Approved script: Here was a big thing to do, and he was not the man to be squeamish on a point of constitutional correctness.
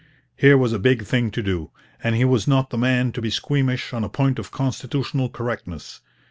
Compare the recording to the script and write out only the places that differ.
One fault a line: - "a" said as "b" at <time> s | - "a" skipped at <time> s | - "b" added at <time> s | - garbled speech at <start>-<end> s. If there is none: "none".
none